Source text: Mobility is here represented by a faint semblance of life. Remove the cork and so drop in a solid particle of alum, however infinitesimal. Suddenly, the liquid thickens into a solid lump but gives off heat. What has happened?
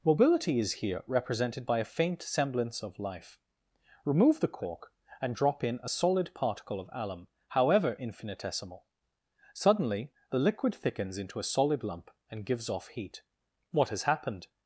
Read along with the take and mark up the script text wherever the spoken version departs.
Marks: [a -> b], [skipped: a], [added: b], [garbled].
Mobility is here represented by a faint semblance of life. Remove the cork and [skipped: so] drop in a solid particle of alum, however infinitesimal. Suddenly, the liquid thickens into a solid lump [but -> and] gives off heat. What has happened?